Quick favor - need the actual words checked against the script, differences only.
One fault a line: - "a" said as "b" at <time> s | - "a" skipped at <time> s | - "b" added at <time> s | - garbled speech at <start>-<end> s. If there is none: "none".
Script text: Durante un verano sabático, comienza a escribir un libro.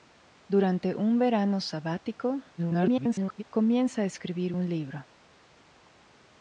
- garbled speech at 2.6-3.4 s